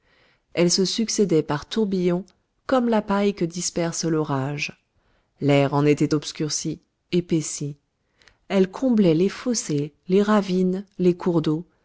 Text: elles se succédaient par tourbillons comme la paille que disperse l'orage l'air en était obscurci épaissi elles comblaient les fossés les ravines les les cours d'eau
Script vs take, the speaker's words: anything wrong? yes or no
yes